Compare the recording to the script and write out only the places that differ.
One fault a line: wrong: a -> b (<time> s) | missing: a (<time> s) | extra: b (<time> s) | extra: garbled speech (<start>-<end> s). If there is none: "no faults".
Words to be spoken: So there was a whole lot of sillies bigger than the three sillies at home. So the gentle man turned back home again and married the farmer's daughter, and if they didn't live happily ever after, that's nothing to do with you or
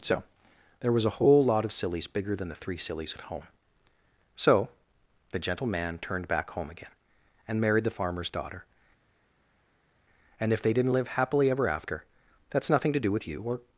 no faults